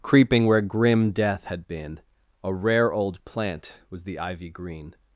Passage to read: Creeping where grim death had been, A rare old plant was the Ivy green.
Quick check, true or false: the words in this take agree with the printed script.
true